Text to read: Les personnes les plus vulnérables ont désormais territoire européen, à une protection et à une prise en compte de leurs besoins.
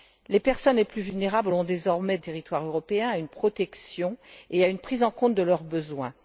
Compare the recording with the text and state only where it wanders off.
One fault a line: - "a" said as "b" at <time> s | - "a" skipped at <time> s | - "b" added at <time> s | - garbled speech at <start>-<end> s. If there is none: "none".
none